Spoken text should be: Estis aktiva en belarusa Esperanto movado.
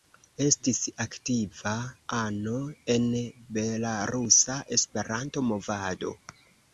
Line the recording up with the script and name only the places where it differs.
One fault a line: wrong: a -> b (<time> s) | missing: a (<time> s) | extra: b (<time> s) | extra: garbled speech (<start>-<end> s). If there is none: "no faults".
extra: ano (2.2 s)